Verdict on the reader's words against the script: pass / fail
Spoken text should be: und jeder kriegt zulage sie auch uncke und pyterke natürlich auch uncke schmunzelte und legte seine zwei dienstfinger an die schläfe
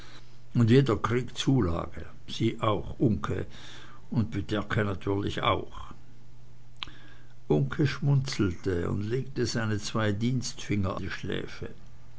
fail